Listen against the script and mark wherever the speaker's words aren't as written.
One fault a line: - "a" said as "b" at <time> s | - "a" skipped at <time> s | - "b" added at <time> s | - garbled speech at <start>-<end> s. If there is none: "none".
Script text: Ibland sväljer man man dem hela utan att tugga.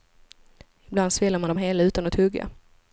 - "man" skipped at 1.5 s